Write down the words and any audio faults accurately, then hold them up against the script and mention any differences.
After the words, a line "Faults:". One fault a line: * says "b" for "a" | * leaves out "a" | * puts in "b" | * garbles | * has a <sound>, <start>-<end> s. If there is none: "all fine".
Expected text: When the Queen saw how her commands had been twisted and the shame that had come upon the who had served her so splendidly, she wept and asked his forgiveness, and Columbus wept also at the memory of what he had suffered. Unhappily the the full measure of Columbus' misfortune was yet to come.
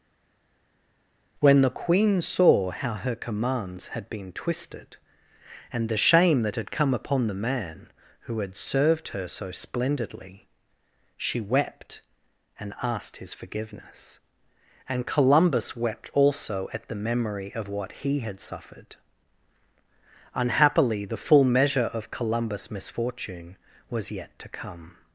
When the Queen saw how her commands had been twisted and the shame that had come upon the man who had served her so splendidly, she wept and asked his forgiveness, and Columbus wept also at the memory of what he had suffered. Unhappily the full measure of Columbus' misfortune was yet to come.
Faults:
* puts in "man"
* leaves out "the"